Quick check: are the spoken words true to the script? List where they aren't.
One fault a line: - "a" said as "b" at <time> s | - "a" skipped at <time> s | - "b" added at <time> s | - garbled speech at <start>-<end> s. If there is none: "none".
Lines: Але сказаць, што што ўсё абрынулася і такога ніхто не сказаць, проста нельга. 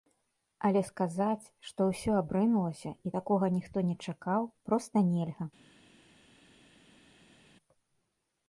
- "што" skipped at 1.9 s
- "сказаць" said as "чакаў" at 4.1 s